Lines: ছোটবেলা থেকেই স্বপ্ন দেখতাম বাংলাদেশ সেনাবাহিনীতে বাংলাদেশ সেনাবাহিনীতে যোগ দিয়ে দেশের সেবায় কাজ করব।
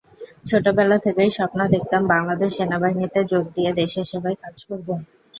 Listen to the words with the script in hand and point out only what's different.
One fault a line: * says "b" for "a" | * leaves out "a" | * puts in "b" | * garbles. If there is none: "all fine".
* leaves out "বাংলাদেশ সেনাবাহিনীতে"